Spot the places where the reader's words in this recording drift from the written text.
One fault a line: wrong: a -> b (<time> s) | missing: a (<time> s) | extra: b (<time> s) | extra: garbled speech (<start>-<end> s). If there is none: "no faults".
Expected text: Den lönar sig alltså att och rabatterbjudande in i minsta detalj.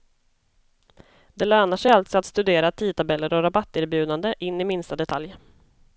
wrong: Den -> Det (1.3 s)
extra: studera tidtabeller (2.2 s)